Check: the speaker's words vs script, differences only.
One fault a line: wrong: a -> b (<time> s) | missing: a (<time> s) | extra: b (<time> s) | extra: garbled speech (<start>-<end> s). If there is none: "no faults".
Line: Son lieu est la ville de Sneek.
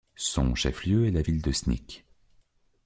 extra: chef (0.6 s)